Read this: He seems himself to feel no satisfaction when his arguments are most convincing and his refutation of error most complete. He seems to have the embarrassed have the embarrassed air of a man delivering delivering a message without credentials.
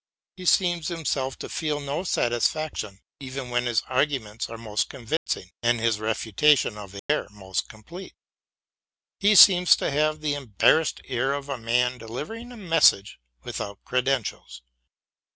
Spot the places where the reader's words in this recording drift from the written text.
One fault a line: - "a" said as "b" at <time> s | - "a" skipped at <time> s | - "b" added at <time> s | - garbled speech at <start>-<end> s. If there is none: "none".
- "even" added at 3.2 s
- "have the embarrassed" skipped at 11.0 s
- "delivering" skipped at 12.5 s